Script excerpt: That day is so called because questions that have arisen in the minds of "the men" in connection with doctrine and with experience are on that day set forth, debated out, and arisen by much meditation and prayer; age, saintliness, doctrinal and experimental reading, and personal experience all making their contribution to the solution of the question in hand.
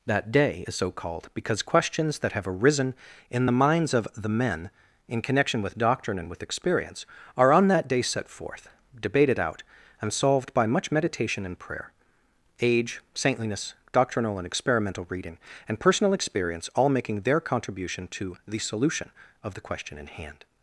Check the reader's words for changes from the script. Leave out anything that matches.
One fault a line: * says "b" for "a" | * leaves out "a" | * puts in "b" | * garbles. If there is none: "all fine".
* says "solved" for "arisen"